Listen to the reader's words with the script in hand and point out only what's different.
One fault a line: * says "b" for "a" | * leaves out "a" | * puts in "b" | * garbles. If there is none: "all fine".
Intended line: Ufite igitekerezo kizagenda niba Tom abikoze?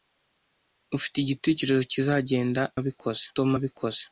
* says "abikoze" for "niba"